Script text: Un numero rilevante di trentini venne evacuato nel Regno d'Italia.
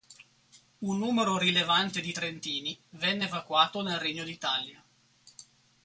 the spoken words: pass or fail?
pass